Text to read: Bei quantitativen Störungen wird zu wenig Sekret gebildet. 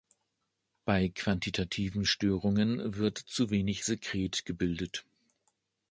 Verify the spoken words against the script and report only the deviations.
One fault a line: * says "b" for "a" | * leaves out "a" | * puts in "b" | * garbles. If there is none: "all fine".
all fine